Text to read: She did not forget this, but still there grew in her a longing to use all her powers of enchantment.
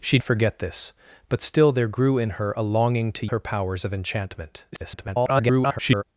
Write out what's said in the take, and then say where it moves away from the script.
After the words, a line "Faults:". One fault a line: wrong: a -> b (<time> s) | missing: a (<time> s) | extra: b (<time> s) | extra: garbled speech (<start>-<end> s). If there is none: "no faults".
She forget this, but still there grew in her a longing to her powers of enchantment. [garbled]
Faults:
missing: did not (0.2 s)
missing: use all (3.3 s)
extra: garbled speech (4.7-6.0 s)